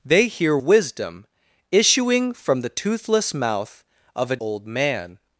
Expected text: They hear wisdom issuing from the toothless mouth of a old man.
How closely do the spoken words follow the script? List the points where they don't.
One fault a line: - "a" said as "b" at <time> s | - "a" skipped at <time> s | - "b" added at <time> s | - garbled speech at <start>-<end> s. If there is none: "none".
none